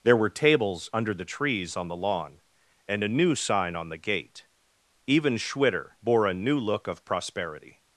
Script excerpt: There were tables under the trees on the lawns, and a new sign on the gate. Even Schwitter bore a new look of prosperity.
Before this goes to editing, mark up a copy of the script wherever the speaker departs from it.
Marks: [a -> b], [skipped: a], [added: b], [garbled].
There were tables under the trees on the [lawns, -> lawn] and a new sign on the gate. Even Schwitter bore a new look of prosperity.